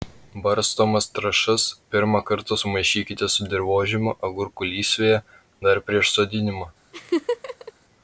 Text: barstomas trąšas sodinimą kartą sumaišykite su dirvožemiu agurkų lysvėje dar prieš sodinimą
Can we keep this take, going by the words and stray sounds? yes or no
no